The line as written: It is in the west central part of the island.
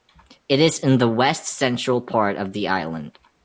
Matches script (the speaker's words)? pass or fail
pass